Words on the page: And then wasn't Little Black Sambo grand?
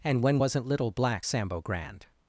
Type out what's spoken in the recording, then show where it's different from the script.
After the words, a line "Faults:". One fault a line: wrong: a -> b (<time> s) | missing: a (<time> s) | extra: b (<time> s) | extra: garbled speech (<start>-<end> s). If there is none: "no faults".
And when wasn't Little Black Sambo grand?
Faults:
wrong: then -> when (0.2 s)